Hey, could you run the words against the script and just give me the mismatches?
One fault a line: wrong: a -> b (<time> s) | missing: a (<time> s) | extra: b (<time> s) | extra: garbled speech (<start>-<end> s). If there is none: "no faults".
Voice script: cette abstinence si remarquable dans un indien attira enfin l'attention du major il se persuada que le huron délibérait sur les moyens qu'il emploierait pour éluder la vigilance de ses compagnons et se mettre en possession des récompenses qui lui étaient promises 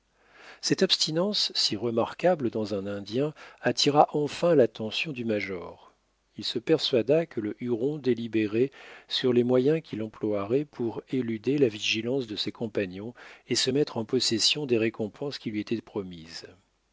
no faults